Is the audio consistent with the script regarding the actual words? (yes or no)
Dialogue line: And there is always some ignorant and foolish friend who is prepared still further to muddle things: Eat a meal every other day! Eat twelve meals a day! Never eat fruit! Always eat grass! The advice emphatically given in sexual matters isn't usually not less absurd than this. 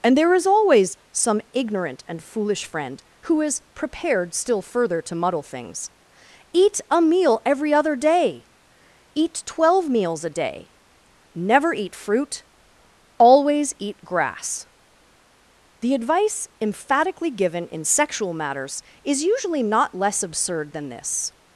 no